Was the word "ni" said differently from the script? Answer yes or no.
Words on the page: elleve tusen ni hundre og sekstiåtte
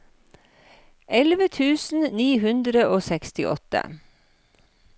no